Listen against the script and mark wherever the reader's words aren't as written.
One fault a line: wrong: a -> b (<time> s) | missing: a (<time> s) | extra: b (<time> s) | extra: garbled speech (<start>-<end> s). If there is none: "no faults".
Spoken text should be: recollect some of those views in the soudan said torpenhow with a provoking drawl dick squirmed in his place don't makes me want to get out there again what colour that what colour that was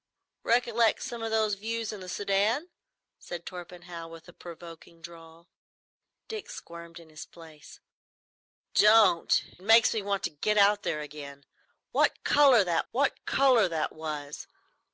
no faults